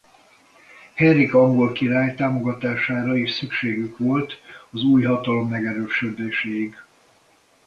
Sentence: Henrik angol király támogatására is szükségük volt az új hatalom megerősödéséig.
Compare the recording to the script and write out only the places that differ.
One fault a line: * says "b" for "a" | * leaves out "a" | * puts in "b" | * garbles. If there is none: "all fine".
all fine